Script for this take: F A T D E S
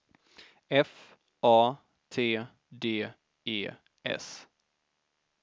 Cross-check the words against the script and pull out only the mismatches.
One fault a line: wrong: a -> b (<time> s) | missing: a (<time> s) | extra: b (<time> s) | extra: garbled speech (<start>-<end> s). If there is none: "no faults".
no faults